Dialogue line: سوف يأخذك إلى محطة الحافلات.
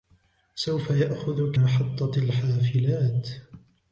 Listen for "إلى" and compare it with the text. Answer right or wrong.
wrong